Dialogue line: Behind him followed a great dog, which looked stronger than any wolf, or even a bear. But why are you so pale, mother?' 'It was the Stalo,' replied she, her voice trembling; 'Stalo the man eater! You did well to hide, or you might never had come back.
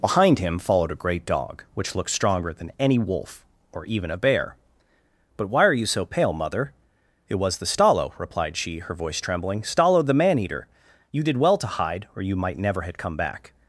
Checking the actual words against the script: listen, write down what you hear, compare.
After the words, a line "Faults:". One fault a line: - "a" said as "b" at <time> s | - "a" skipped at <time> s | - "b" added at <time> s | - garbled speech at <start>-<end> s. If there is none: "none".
Behind him followed a great dog, which looked stronger than any wolf, or even a bear. But why are you so pale, mother?' 'It was the Stalo,' replied she, her voice trembling; 'Stalo the man eater! You did well to hide, or you might never have come back.
Faults:
- "had" said as "have" at 12.8 s